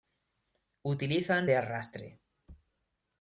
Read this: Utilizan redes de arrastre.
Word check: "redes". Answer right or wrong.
wrong